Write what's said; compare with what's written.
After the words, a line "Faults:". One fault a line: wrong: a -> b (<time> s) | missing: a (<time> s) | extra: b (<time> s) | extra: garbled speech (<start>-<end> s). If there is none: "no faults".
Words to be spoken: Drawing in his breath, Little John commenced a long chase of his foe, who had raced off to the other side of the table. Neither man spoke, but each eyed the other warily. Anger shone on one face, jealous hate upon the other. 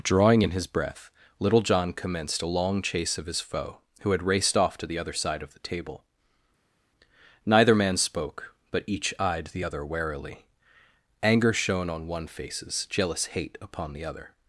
Drawing in his breath, Little John commenced a long chase of his foe, who had raced off to the other side of the table. Neither man spoke, but each eyed the other warily. Anger shone on one faces, jealous hate upon the other.
Faults:
wrong: face -> faces (12.3 s)